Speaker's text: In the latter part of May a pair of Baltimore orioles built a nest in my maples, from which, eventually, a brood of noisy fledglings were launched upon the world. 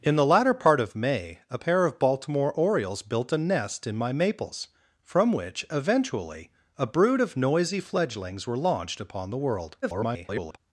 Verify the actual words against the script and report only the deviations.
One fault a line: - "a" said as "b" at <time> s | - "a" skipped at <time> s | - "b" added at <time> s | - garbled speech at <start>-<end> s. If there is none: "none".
- garbled speech at 9.8-10.6 s